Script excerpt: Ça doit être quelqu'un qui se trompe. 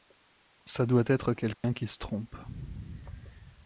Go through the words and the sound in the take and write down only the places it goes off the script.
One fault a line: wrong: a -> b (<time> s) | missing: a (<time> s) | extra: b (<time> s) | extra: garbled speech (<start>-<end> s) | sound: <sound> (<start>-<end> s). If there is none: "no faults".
sound: dropout (1.5-1.6 s)